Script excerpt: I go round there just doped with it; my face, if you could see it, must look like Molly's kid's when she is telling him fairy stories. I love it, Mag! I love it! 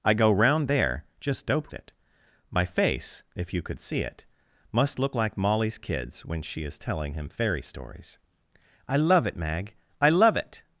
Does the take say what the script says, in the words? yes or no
no